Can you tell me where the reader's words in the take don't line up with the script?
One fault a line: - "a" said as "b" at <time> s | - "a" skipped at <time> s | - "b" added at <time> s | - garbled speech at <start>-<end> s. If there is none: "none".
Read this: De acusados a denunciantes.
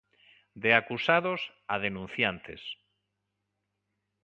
none